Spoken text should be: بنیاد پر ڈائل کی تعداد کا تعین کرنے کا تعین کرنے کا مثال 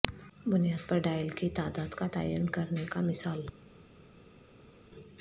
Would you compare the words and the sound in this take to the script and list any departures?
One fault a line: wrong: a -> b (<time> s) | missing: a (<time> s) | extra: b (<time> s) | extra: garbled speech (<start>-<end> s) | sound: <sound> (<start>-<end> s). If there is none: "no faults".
missing: تعین کرنے کا (3.0 s)